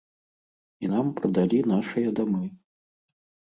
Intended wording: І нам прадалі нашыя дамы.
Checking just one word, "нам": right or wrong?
right